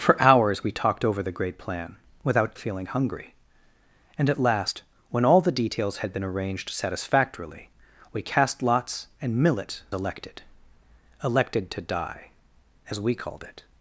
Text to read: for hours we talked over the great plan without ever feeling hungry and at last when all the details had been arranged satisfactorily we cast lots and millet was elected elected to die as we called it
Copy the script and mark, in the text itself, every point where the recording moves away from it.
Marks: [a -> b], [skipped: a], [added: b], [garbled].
for hours we talked over the great plan without [skipped: ever] feeling hungry and at last when all the details had been arranged satisfactorily we cast lots and millet [skipped: was] elected elected to die as we called it